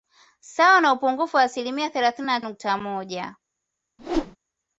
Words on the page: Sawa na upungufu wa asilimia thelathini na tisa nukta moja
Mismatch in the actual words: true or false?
true